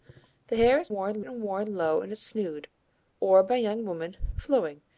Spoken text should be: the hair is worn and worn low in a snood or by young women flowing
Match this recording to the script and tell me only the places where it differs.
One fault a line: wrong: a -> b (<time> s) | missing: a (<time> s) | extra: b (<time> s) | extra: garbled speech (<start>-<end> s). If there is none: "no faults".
no faults